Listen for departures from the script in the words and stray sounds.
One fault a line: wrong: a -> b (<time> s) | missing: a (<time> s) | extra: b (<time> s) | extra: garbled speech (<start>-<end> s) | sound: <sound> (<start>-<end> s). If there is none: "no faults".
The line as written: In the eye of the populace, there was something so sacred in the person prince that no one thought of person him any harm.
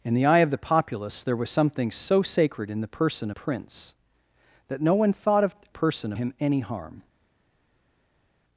no faults